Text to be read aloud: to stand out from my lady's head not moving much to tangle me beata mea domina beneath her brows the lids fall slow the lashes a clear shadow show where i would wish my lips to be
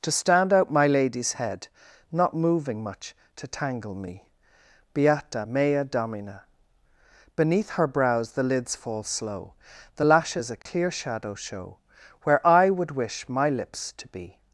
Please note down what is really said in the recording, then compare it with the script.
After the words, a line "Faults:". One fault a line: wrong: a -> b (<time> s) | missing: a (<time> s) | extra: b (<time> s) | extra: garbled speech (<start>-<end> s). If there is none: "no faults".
to stand out my lady's head not moving much to tangle me beata mea domina beneath her brows the lids fall slow the lashes a clear shadow show where i would wish my lips to be
Faults:
missing: from (0.7 s)